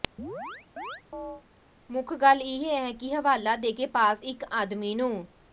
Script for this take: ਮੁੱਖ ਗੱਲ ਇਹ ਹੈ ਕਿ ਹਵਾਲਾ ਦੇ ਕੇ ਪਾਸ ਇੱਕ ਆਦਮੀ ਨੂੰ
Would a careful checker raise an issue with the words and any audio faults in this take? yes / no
yes